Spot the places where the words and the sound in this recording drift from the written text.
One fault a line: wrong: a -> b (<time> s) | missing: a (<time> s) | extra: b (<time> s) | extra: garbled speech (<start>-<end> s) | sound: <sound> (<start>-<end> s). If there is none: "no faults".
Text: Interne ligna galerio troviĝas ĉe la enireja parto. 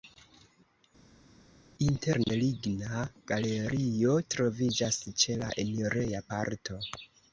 no faults